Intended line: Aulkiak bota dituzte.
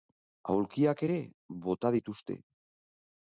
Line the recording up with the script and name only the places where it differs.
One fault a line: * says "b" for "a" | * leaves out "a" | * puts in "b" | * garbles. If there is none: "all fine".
* puts in "ere"